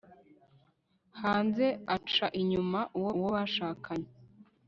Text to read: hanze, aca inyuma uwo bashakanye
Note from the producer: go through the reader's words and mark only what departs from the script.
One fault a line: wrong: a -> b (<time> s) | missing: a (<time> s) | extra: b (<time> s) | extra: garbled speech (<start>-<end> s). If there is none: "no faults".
extra: uwo (3.2 s)